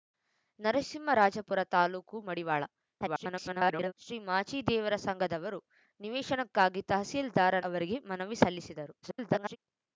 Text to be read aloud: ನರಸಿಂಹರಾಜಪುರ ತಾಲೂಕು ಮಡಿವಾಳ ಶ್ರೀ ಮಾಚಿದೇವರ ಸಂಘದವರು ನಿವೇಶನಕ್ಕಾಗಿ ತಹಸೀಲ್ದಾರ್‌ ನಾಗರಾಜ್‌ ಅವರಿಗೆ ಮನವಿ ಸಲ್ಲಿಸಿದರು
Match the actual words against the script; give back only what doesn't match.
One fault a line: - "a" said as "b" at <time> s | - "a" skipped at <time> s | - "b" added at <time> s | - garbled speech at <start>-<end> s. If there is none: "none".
- garbled speech at 3.0-3.9 s
- "ನಾಗರಾಜ್" skipped at 7.6 s
- garbled speech at 9.0-9.6 s